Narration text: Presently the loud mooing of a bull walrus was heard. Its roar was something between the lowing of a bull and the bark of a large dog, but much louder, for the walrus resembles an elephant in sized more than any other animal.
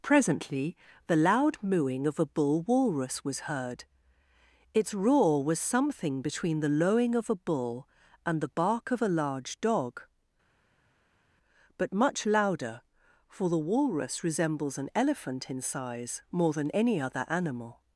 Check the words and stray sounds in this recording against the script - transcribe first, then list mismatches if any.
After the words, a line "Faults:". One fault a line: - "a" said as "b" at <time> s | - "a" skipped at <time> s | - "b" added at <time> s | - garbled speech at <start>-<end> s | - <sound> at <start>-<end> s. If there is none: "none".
Presently the loud mooing of a bull walrus was heard. Its roar was something between the lowing of a bull and the bark of a large dog, but much louder, for the walrus resembles an elephant in size more than any other animal.
Faults:
- "sized" said as "size" at 15.6 s